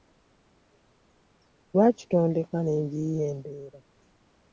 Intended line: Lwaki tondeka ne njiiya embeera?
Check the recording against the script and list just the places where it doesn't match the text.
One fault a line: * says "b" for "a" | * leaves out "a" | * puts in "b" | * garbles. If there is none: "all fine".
all fine